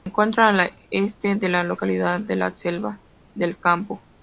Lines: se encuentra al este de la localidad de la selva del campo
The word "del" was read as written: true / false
true